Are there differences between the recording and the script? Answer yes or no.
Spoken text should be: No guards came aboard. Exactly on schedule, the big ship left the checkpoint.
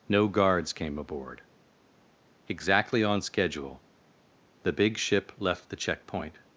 no